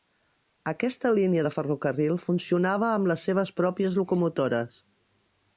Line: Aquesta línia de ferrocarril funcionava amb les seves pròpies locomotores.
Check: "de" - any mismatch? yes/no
no